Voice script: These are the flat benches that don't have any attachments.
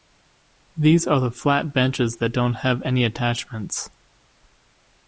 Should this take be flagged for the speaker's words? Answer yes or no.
no